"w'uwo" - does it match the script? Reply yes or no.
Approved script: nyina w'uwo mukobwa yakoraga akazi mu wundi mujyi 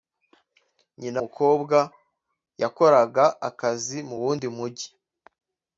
no